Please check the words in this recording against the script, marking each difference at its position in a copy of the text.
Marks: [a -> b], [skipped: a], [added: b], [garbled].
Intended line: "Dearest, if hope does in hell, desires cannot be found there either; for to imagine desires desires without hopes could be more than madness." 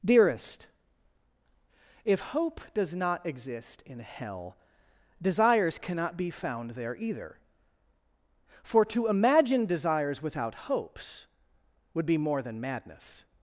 "Dearest, if hope does [added: not exist] in hell, desires cannot be found there either; for to imagine desires [skipped: desires] without hopes [could -> would] be more than madness."